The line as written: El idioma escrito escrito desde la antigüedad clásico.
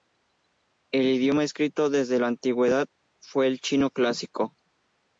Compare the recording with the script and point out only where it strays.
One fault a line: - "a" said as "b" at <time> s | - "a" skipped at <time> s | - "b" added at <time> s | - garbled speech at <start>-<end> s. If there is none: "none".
- "escrito" skipped at 1.9 s
- "fue el Chino" added at 3.2 s